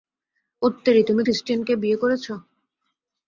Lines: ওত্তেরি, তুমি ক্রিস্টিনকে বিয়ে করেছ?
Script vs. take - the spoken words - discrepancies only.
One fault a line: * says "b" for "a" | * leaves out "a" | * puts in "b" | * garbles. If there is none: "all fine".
all fine